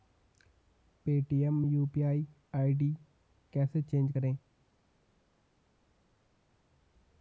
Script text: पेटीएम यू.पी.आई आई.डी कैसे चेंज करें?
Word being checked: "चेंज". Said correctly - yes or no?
yes